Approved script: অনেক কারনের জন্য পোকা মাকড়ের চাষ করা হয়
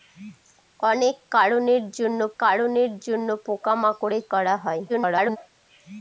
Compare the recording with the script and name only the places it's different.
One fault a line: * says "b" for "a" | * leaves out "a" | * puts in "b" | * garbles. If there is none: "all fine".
* puts in "কারনের জন্য"
* leaves out "চাষ"
* garbles